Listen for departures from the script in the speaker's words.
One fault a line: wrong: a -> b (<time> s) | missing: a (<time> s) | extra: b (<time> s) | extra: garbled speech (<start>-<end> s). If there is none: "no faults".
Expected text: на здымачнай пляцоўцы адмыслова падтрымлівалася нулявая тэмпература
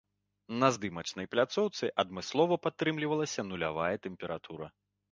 no faults